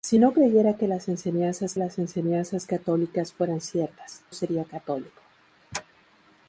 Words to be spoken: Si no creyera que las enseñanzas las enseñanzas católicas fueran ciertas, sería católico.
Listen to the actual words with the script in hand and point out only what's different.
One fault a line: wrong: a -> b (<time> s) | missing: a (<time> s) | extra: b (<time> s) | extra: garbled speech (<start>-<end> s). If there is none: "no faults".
no faults